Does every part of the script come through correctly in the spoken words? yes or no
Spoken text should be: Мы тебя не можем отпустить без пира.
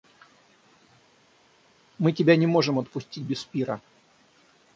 yes